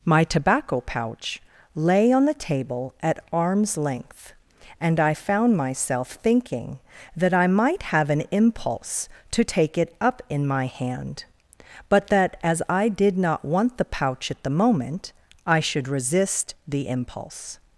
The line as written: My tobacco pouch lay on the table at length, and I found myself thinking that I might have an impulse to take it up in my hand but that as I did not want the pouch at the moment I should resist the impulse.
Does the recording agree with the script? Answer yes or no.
no